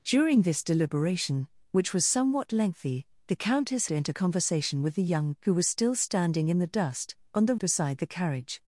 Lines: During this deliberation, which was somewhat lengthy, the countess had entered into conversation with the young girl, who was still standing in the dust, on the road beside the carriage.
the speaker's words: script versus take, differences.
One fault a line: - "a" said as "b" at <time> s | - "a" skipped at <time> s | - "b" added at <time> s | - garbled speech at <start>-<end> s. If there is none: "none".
- "had entered" skipped at 3.9 s
- "girl" skipped at 5.3 s
- "road" skipped at 7.6 s